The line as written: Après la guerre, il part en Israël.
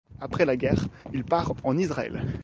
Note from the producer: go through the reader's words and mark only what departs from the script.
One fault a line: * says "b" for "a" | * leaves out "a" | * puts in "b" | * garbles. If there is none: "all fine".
all fine